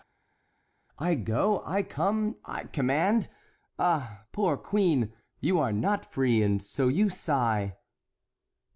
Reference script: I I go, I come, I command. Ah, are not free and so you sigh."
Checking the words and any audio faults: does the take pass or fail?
fail